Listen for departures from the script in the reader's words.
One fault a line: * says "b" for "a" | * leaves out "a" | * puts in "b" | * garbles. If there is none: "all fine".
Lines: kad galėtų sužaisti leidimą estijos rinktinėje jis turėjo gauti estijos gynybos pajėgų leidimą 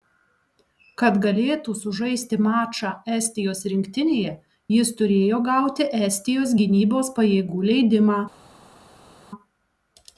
* says "mačą" for "leidimą"